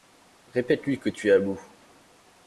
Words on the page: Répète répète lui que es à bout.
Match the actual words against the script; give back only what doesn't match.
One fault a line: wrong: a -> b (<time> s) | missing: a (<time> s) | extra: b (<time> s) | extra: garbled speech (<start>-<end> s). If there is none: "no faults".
missing: répète (0.8 s)
extra: tu (1.1 s)